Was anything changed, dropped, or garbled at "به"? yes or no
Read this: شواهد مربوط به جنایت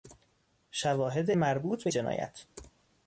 no